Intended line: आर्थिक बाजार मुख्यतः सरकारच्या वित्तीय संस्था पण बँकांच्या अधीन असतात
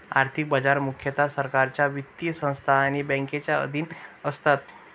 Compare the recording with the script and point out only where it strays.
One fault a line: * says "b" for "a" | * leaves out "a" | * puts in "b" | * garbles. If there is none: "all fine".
* says "आणि" for "पण"